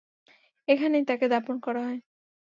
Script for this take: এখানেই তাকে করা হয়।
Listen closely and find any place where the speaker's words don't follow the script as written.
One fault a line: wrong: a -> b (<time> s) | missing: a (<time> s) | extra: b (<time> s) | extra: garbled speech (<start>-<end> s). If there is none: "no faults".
extra: দাফন (1.3 s)